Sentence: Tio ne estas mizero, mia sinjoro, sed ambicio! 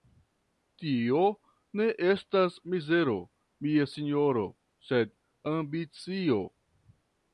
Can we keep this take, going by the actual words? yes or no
yes